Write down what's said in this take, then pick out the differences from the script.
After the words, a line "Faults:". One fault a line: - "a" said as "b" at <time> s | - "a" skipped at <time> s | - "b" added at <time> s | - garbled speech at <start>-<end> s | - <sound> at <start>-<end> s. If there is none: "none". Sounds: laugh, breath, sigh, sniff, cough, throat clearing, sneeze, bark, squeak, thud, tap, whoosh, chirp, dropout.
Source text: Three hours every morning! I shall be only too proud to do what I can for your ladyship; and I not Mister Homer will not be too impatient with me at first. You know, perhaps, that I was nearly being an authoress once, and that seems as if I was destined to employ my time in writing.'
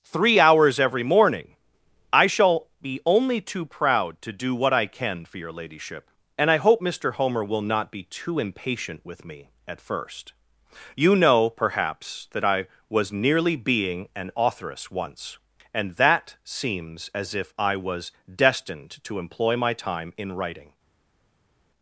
Three hours every morning! I shall be only too proud to do what I can for your ladyship; and I hope Mister Homer will not be too impatient with me at first. You know, perhaps, that I was nearly being an authoress once, and that seems as if I was destined to employ my time in writing.'
Faults:
- "not" said as "hope" at 6.6 s